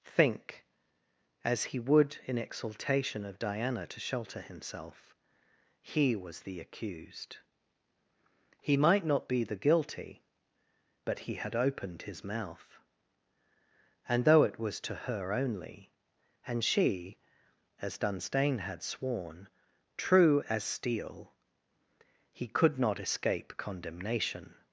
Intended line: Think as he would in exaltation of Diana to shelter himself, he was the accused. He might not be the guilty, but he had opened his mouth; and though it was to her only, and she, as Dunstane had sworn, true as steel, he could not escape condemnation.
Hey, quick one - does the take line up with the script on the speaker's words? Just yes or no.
yes